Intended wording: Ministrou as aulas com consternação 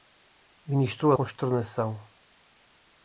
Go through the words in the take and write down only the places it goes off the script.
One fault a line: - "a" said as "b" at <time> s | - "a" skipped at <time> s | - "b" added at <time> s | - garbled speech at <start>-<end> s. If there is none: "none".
- "as aulas com" skipped at 1.1 s